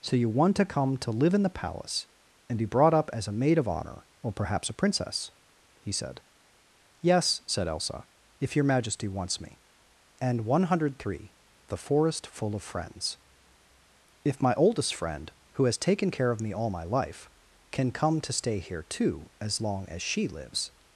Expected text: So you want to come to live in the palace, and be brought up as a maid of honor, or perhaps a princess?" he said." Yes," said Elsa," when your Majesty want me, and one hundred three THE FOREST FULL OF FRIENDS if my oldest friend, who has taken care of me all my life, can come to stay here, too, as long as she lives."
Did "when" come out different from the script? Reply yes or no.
yes